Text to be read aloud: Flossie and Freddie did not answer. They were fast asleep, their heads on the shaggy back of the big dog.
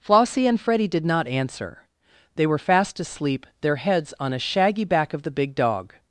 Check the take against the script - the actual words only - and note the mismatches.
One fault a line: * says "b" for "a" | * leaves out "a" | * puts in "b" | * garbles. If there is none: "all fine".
* says "a" for "the"